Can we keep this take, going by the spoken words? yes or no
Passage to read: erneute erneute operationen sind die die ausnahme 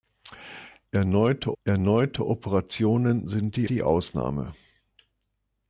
yes